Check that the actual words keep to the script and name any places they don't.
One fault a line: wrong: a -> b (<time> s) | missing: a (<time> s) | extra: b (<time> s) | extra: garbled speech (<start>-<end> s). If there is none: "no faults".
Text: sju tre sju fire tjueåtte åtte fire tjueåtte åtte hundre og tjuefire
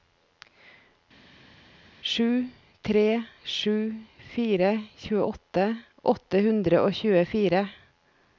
missing: fire tjueåtte åtte (6.4 s)